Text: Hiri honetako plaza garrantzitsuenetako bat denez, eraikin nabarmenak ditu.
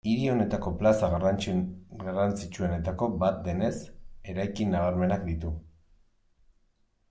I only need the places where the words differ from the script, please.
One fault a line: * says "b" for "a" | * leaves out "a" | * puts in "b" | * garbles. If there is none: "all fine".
all fine